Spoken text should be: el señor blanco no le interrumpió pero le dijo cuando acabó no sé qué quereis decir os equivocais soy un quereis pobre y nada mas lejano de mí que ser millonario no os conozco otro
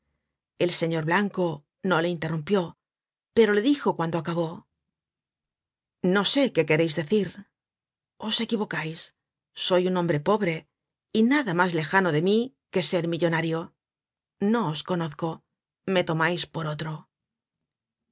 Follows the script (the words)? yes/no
no